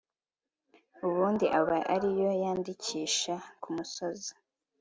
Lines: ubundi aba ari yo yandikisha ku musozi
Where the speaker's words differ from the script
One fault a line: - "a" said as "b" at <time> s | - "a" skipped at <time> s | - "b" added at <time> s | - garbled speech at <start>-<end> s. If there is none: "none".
none